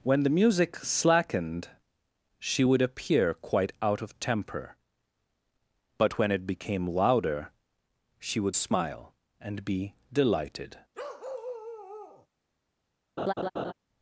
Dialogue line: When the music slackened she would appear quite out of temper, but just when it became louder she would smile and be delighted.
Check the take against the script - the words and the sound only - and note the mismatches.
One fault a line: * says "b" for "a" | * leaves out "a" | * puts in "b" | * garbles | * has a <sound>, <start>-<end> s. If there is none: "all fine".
* leaves out "just"
* has a bark, 10.9-12.3 s
* has a laugh, 13.2-13.7 s